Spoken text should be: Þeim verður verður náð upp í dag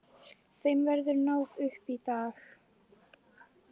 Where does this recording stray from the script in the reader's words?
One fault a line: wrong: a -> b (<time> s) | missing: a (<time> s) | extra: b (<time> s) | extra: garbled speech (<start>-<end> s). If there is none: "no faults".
missing: verður (1.2 s)